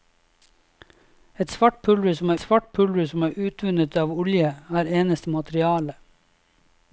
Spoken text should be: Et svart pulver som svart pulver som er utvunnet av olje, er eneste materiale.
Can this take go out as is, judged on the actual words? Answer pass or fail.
pass